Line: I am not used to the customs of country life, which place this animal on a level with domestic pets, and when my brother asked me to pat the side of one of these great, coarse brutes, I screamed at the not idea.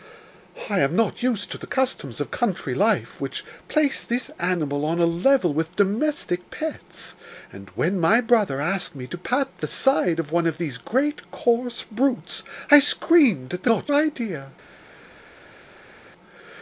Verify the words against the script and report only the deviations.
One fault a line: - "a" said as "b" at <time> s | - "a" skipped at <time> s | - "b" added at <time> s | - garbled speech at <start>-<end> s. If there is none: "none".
none